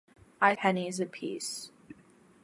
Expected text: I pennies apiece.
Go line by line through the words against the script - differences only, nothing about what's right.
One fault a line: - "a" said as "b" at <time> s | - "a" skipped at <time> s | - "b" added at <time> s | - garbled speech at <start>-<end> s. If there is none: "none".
none